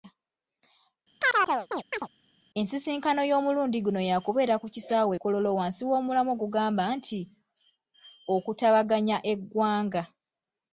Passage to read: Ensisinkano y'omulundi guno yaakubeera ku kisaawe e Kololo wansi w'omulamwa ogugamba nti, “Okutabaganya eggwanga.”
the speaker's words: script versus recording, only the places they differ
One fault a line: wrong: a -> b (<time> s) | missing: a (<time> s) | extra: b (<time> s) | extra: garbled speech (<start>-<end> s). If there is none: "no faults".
no faults